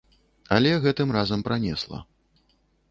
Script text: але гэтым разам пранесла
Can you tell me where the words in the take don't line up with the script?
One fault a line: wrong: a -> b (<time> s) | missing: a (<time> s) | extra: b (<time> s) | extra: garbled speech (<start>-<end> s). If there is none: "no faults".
no faults